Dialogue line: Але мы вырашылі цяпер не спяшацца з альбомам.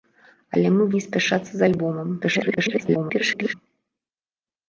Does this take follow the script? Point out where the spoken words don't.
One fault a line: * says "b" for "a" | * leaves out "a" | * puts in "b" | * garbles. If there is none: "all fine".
* leaves out "вырашылі цяпер"
* garbles